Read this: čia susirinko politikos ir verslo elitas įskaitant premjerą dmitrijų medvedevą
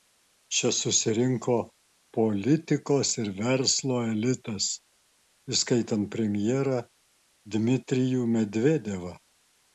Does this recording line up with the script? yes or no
yes